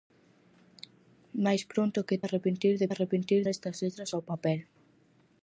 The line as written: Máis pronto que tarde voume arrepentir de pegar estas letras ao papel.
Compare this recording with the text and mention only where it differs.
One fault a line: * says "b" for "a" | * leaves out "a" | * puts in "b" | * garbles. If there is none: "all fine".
* leaves out "tarde voume"
* says "arrepentir" for "pegar"